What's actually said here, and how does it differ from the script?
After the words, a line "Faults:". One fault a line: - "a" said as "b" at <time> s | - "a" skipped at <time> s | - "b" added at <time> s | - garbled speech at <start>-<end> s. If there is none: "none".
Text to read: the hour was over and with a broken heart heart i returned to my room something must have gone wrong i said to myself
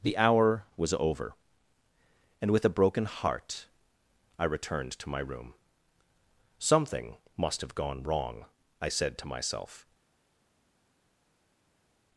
the hour was over and with a broken heart i returned to my room something must have gone wrong i said to myself
Faults:
- "heart" skipped at 3.7 s